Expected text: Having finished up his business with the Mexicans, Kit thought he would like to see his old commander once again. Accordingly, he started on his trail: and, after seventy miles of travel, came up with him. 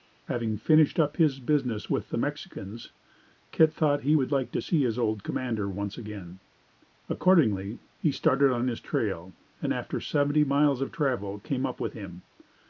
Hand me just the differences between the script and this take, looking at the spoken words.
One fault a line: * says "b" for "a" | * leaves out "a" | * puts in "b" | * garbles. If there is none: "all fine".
all fine